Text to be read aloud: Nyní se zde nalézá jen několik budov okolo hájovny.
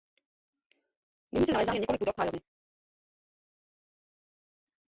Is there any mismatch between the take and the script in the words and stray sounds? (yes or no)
yes